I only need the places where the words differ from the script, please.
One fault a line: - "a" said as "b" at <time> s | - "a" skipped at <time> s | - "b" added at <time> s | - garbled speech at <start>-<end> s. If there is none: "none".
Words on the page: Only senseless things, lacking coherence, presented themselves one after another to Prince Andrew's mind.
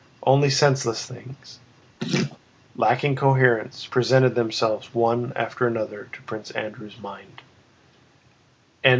none